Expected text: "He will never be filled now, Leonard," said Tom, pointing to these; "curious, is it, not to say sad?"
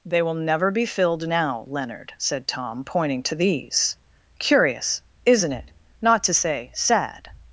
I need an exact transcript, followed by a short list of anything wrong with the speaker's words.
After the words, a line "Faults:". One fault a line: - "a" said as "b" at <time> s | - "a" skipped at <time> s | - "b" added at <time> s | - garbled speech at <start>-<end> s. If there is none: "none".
"They will never be filled now, Leonard," said Tom, pointing to these; "curious, isn't it, not to say sad?"
Faults:
- "He" said as "They" at 0.0 s
- "is" said as "isn't" at 5.2 s